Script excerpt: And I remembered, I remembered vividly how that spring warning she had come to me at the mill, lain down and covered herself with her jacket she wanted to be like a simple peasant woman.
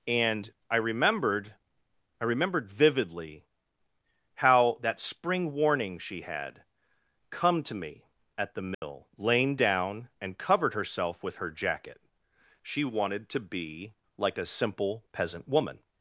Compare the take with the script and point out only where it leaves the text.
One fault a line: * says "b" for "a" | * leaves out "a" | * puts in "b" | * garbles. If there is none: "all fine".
all fine